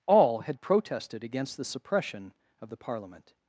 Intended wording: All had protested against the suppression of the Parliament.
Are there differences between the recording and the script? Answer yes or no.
no